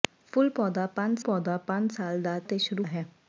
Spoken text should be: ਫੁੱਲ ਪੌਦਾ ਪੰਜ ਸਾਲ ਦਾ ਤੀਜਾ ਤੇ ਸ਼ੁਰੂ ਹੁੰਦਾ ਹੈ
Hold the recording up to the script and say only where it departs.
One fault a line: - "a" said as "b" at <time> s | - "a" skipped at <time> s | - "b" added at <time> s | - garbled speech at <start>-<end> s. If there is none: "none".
- "ਪੌਦਾ ਪੰਜ" added at 1.2 s
- "ਤੀਜਾ" skipped at 2.4 s
- "ਹੁੰਦਾ" skipped at 2.8 s